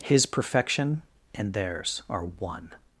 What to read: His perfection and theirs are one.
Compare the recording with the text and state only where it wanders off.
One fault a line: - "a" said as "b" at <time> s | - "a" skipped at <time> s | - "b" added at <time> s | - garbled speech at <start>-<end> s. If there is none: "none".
none